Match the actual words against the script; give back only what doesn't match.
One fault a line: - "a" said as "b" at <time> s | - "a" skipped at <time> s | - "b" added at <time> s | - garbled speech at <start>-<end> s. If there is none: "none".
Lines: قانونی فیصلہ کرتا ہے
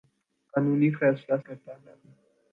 none